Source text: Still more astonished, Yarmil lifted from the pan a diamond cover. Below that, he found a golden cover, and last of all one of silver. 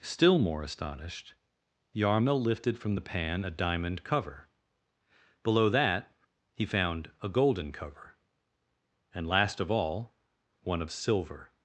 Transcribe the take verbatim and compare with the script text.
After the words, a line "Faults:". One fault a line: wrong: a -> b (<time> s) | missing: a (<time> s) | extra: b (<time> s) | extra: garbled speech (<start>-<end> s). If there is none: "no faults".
Still more astonished, Yarmil lifted from the pan a diamond cover. Below that, he found a golden cover, and last of all one of silver.
Faults:
no faults